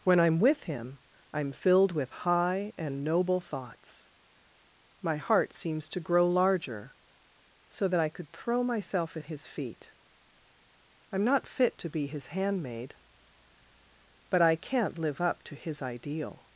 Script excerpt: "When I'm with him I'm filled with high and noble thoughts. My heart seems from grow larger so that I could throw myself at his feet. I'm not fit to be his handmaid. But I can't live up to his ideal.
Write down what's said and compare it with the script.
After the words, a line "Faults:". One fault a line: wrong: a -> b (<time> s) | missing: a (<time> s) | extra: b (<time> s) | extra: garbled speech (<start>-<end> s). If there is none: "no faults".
"When I'm with him I'm filled with high and noble thoughts. My heart seems to grow larger so that I could throw myself at his feet. I'm not fit to be his handmaid. But I can't live up to his ideal.
Faults:
wrong: from -> to (5.9 s)